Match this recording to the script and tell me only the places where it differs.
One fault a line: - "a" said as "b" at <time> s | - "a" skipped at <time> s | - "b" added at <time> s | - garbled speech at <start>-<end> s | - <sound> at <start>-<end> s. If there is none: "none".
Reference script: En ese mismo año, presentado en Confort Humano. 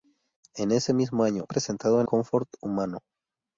none